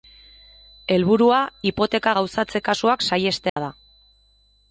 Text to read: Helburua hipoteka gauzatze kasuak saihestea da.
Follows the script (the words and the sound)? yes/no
no